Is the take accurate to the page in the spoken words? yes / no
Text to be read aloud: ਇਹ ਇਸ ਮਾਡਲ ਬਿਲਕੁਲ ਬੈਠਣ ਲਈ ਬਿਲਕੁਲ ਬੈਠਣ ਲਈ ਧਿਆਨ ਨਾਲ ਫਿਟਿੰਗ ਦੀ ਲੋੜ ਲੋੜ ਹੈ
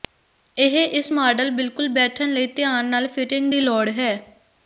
no